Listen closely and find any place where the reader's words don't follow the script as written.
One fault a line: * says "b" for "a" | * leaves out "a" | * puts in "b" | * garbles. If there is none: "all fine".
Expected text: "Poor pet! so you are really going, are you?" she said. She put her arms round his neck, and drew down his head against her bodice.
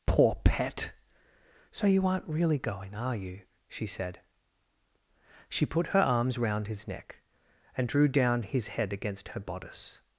* says "aren't" for "are"